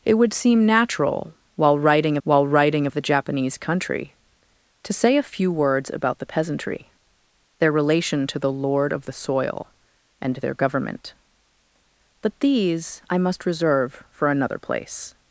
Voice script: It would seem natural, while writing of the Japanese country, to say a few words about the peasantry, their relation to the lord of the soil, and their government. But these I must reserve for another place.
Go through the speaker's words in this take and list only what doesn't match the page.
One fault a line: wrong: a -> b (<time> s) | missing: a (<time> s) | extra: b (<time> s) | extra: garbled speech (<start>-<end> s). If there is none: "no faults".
extra: while writing (2.2 s)